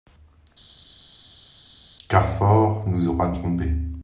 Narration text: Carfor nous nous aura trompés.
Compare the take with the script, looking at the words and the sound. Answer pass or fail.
fail